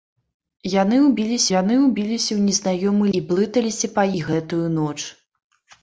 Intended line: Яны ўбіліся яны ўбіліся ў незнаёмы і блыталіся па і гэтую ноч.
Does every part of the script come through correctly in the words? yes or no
yes